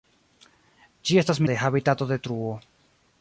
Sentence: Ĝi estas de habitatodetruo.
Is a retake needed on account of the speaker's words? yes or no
no